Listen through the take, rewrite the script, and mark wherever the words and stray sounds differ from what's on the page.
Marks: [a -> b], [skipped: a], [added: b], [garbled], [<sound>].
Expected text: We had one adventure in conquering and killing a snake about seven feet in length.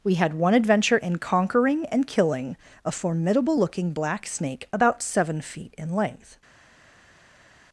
We had one adventure in conquering and killing a [added: formidable looking black] snake about seven feet in length.